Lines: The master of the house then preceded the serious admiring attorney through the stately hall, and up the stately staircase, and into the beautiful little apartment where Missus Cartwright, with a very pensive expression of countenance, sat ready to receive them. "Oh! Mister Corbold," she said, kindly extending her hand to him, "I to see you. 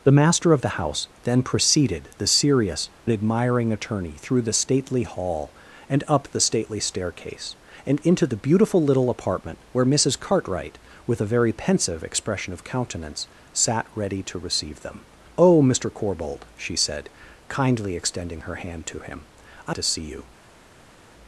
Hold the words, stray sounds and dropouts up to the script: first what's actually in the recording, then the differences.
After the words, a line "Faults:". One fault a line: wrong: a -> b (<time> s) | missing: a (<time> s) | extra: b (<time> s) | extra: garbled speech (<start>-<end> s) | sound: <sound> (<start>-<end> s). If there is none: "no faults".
The master of the house then preceded the serious admiring attorney through the stately hall, and up the stately staircase, and into the beautiful little apartment where Missus Cartwright, with a very pensive expression of countenance, sat ready to receive them. "Oh! Mister Corbold," she said, kindly extending her hand to him, "I to see you.
Faults:
no faults